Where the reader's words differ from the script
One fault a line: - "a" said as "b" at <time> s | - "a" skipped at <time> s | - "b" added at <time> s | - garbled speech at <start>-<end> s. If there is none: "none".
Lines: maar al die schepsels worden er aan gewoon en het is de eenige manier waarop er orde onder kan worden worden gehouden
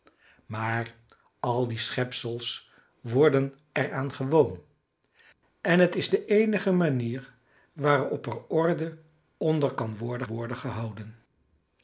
none